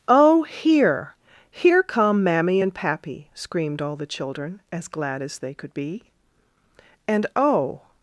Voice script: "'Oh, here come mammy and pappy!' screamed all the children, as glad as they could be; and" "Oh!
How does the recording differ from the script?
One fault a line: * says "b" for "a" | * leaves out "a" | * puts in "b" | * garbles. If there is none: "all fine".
* puts in "here"